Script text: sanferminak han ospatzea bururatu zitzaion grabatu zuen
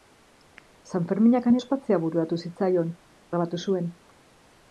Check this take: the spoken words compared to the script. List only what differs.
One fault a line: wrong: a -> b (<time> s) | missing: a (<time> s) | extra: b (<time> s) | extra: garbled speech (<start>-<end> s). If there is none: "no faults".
no faults